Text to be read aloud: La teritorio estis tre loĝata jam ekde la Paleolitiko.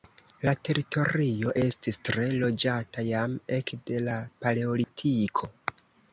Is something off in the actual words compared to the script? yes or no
no